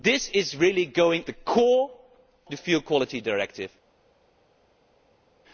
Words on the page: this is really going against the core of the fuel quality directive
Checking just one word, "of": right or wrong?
wrong